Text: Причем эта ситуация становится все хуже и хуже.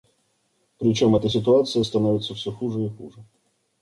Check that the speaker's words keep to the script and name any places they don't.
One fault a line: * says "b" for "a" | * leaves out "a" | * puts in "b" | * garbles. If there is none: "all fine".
all fine